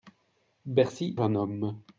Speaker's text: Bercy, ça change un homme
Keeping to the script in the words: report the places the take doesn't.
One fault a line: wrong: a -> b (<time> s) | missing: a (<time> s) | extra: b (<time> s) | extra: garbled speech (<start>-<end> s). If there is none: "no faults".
missing: ça change (1.2 s)